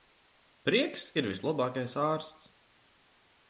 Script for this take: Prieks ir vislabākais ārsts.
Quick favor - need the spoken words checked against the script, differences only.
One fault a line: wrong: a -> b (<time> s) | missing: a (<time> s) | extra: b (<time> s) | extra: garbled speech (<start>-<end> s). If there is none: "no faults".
no faults